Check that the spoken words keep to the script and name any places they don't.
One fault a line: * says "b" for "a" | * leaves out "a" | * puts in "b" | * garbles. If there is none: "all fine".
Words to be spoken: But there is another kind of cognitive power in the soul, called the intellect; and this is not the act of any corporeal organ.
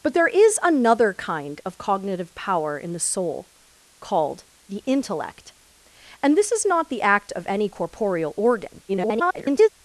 * garbles